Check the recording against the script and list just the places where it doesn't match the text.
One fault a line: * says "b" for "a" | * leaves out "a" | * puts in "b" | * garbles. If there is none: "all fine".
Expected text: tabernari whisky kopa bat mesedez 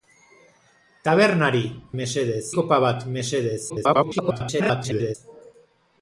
* says "mesedez" for "whisky"
* garbles